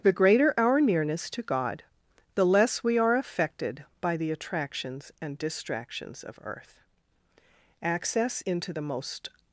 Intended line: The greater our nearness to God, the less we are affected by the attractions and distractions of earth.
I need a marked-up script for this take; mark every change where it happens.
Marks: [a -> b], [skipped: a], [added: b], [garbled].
The greater our nearness to God, the less we are affected by the attractions and distractions of earth. [added: Access into the most]